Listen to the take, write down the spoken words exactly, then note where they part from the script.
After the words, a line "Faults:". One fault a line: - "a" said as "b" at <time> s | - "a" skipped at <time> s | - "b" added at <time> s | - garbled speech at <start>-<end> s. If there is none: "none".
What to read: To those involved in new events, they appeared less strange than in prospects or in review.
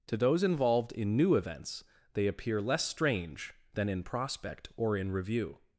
To those involved in new events, they appear less strange than in prospect or in review.
Faults:
- "appeared" said as "appear" at 2.3 s
- "prospects" said as "prospect" at 4.0 s